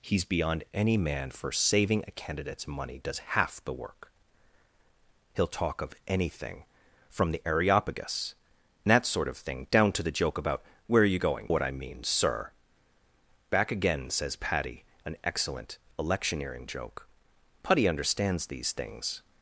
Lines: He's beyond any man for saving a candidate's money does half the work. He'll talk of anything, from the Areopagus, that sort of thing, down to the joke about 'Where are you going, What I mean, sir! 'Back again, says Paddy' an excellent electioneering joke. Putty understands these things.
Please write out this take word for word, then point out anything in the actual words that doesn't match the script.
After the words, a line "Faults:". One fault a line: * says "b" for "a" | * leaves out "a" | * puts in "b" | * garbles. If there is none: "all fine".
He's beyond any man for saving a candidate's money does half the work. He'll talk of anything, from the Areopagus, that sort of thing, down to the joke about 'Where are you going, What I mean, sir! 'Back again, says Paddy' an excellent electioneering joke. Putty understands these things.
Faults:
all fine